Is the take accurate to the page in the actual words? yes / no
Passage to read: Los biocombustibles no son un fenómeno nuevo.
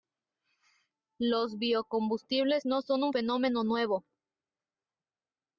yes